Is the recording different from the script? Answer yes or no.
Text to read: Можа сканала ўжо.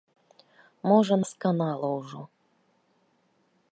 no